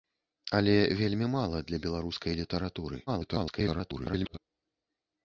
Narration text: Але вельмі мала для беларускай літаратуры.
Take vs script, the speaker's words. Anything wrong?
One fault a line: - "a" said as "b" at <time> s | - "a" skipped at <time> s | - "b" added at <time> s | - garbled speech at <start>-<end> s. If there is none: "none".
- garbled speech at 3.1-4.4 s